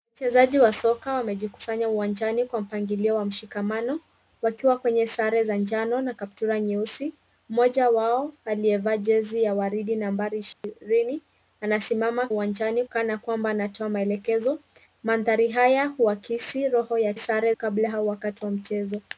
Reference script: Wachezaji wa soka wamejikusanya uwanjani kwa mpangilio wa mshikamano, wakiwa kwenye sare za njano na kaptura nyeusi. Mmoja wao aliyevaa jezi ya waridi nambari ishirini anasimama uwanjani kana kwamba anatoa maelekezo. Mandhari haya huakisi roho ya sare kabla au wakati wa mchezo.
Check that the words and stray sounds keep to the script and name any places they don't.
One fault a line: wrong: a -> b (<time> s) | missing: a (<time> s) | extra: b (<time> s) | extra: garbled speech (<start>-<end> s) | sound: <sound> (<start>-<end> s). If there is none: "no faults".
sound: dropout (10.5-10.6 s)